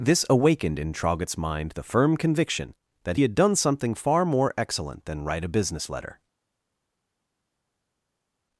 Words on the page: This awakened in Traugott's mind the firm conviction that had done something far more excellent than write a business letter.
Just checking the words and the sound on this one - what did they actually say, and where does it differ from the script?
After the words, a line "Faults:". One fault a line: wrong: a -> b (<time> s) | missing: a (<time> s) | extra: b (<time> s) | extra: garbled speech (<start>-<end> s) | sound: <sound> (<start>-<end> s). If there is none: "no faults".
This awakened in Traugott's mind the firm conviction that had done something far more excellent than write a business letter.
Faults:
no faults